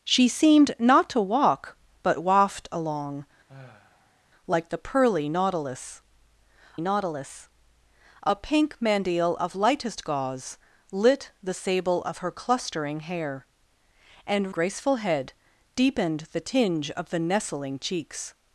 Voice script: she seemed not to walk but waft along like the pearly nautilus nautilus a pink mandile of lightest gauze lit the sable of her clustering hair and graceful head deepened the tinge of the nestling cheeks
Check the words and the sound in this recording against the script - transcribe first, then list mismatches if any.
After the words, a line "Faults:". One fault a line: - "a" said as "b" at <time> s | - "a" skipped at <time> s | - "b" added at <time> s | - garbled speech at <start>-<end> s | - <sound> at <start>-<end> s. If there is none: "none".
she seemed not to walk but waft along like the pearly nautilus nautilus a pink mandile of lightest gauze lit the sable of her clustering hair and graceful head deepened the tinge of the nestling cheeks
Faults:
- sigh at 3.5-4.3 s